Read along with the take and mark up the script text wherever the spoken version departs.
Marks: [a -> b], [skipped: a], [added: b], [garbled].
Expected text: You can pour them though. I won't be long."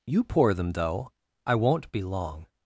You [skipped: can] pour them though. I won't be long."